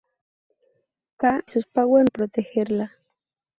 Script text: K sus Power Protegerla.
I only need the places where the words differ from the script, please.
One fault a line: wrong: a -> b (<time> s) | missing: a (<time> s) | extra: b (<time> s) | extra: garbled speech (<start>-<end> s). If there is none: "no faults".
no faults